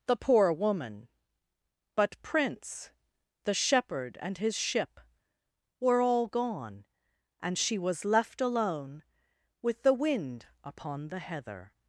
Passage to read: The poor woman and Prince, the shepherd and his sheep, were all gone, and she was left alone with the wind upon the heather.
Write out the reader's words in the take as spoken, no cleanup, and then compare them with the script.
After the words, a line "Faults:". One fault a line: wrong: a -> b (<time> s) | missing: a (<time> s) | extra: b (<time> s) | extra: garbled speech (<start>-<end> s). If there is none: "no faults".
The poor woman but Prince, the shepherd and his ship, were all gone, and she was left alone with the wind upon the heather.
Faults:
wrong: and -> but (2.0 s)
wrong: sheep -> ship (4.6 s)